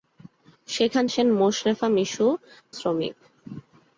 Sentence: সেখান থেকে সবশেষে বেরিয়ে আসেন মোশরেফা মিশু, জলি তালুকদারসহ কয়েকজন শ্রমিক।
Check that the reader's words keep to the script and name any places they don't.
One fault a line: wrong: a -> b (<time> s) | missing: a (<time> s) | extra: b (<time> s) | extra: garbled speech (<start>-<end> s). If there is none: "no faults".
missing: থেকে সবশেষে বেরিয়ে (1.0 s)
missing: জলি তালুকদারসহ কয়েকজন (2.3 s)